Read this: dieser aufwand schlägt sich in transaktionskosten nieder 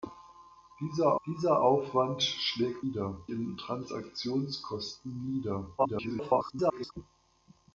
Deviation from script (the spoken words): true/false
true